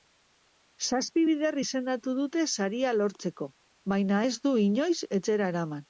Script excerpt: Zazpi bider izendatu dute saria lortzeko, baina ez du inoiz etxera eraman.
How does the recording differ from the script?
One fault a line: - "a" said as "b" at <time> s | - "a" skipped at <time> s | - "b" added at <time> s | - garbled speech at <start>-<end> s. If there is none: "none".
none